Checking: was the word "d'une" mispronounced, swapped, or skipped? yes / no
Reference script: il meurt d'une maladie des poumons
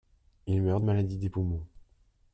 yes